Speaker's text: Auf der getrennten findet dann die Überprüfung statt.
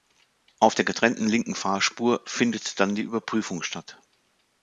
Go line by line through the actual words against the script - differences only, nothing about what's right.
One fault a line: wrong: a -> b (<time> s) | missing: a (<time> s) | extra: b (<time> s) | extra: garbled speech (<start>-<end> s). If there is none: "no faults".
extra: linken Fahrspur (1.3 s)